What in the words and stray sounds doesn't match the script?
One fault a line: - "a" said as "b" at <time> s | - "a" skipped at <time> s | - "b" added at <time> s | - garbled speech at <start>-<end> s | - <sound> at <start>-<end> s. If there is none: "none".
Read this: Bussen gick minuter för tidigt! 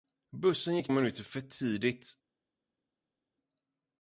none